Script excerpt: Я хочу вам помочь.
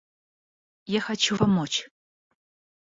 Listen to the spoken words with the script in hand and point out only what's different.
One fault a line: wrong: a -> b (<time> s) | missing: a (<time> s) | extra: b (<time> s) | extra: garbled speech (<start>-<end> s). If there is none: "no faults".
missing: вам (1.4 s)